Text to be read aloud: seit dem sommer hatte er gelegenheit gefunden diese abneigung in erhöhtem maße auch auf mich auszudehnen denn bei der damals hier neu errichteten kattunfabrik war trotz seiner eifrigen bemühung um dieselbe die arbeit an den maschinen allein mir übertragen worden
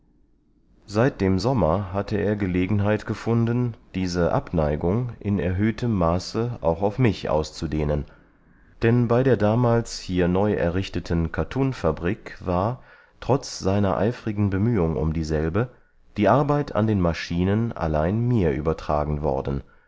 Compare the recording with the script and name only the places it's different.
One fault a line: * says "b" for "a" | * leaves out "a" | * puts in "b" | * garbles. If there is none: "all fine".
all fine